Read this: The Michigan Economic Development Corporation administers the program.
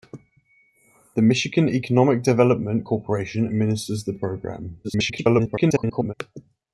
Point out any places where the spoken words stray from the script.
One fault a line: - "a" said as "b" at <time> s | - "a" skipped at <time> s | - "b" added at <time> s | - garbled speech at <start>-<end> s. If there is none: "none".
- garbled speech at 4.8-6.1 s